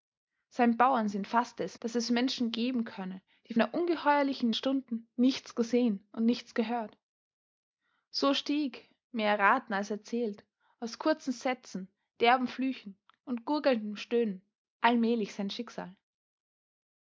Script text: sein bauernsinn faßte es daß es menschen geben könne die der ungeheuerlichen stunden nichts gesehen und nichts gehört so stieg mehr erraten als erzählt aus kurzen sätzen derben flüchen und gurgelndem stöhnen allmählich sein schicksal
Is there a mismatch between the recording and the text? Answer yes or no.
no